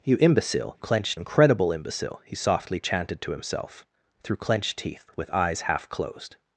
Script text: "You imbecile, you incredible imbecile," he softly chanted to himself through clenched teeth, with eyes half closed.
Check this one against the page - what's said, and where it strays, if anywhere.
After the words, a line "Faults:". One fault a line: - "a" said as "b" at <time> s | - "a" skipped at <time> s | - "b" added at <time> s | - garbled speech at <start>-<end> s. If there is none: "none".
"You imbecile, clenched incredible imbecile," he softly chanted to himself through clenched teeth, with eyes half closed.
Faults:
- "you" said as "clenched" at 0.8 s